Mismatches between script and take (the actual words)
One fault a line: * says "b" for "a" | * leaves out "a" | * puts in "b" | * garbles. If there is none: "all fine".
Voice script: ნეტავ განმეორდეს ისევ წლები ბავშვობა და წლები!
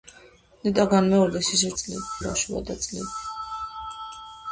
all fine